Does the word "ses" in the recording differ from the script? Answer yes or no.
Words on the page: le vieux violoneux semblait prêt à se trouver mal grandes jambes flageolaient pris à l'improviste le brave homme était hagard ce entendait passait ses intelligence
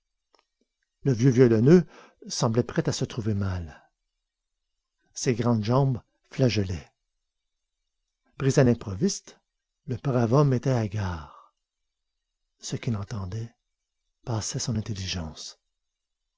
yes